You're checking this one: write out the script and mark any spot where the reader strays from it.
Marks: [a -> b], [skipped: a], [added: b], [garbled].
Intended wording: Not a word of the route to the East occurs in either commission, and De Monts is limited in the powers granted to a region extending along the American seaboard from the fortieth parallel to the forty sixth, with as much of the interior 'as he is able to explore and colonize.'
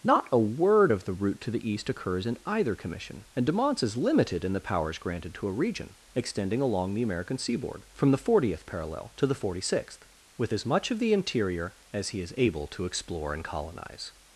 Not a word of the route to the East occurs in either commission, and De Monts is limited in the powers granted to a region extending along the American seaboard from the fortieth parallel to the forty sixth, with as much of the interior 'as he is able to explore and colonize.'